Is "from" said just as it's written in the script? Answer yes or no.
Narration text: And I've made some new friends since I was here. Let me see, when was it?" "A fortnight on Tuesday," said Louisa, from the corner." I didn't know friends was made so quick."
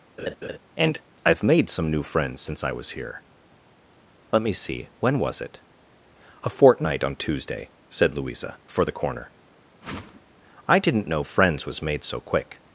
no